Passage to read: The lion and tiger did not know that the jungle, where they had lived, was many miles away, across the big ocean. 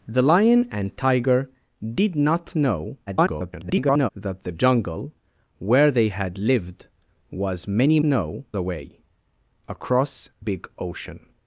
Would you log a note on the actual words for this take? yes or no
yes